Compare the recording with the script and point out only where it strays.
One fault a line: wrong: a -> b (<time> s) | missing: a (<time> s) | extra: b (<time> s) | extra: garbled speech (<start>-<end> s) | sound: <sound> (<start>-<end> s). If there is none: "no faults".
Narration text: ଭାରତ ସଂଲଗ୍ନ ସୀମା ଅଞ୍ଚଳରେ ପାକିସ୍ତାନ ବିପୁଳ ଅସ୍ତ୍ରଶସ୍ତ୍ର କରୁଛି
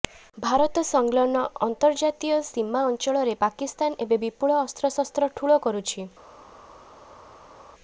extra: ଅନ୍ତର୍ଜାତୀୟ (1.6 s)
extra: ଏବେ (4.1 s)
extra: ଠୁଳ (5.4 s)